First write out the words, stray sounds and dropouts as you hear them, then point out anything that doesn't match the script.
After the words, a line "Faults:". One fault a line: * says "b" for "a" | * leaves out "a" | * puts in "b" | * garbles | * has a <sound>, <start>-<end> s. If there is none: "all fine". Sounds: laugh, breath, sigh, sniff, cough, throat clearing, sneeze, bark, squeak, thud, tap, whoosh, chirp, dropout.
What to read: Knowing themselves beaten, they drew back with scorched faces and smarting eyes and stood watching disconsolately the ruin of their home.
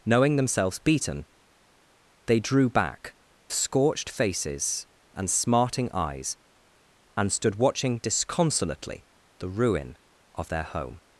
Knowing themselves beaten, they drew back scorched faces and smarting eyes and stood watching disconsolately the ruin of their home.
Faults:
* leaves out "with"